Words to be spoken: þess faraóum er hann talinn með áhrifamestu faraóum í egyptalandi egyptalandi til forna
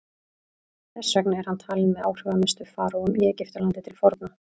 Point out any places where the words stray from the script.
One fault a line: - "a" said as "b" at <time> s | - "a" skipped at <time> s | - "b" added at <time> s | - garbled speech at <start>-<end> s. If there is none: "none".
- "faraóum" said as "vegna" at 1.2 s
- "egyptalandi" skipped at 3.9 s